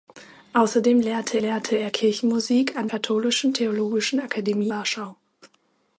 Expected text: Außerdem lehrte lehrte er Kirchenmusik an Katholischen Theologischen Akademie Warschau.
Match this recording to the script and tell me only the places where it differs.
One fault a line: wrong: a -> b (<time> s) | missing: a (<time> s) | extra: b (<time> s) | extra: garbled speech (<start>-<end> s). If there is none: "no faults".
no faults